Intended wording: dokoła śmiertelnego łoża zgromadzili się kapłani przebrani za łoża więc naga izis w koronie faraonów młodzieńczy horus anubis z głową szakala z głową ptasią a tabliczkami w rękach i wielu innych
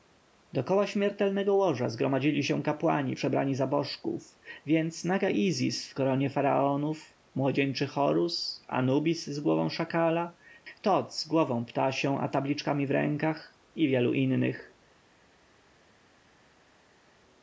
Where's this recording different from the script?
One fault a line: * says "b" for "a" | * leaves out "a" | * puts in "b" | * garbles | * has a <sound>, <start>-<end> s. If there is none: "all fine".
* says "bożków" for "łoża"
* puts in "tot"